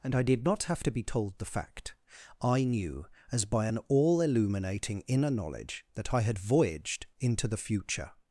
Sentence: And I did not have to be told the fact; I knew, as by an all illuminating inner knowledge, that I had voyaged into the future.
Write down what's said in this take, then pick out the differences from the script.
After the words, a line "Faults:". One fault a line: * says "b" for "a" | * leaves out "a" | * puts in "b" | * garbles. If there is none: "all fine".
And I did not have to be told the fact; I knew, as by an all illuminating inner knowledge, that I had voyaged into the future.
Faults:
all fine